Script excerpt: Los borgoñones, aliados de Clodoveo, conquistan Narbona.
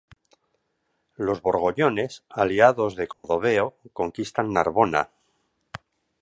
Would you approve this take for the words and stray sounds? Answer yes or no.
no